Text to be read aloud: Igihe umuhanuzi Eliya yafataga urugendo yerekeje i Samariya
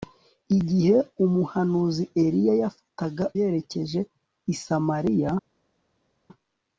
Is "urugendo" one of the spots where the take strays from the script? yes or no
yes